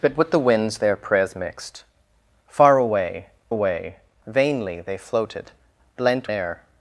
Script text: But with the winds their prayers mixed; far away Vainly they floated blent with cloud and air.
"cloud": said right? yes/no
no